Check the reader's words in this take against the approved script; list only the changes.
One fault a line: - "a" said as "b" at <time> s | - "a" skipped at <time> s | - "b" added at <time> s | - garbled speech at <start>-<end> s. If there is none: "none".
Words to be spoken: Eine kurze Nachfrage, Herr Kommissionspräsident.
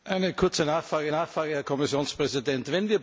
- "Nachfrage" added at 1.1 s